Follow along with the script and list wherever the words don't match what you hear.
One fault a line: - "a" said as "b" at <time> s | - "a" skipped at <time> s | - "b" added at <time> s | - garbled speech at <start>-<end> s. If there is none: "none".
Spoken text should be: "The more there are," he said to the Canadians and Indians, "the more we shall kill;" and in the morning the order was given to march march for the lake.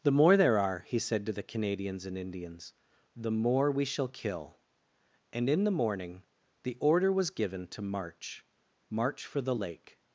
none